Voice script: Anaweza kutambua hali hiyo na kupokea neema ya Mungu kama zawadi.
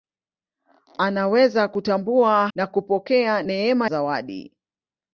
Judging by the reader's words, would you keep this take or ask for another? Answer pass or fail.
fail